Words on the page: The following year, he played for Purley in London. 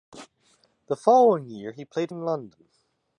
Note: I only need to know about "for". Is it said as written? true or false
false